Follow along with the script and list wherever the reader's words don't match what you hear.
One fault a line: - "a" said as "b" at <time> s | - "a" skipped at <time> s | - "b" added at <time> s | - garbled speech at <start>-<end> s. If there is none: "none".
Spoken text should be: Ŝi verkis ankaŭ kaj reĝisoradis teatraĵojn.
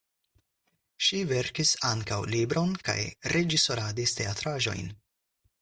- "libron" added at 2.3 s